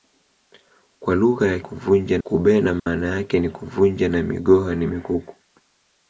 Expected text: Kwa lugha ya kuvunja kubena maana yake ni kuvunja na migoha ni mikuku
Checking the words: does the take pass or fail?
pass